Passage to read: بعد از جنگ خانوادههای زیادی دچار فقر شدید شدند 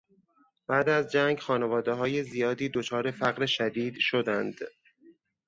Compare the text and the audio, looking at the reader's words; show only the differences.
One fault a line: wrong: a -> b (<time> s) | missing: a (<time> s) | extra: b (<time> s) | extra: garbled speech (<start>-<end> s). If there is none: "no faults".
no faults